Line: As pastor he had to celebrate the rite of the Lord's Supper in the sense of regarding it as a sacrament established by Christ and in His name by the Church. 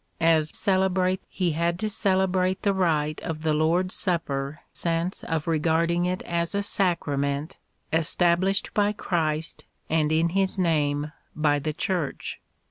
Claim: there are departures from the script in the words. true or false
true